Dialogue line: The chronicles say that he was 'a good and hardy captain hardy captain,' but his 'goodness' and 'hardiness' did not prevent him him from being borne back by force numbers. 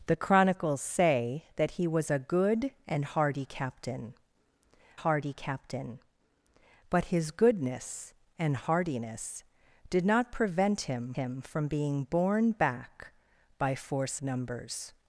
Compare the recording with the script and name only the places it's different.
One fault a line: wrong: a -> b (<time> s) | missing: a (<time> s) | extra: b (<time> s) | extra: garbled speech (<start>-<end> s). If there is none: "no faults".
no faults